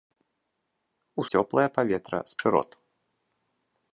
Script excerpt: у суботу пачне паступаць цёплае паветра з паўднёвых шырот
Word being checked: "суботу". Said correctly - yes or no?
no